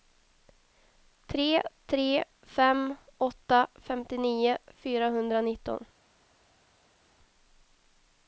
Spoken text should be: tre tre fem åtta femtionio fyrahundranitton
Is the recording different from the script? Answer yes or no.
no